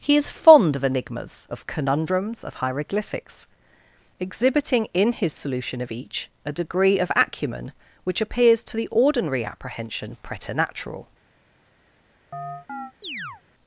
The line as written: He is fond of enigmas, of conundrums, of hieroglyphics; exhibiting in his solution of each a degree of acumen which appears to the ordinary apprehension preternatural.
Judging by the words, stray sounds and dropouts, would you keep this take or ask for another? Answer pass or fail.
fail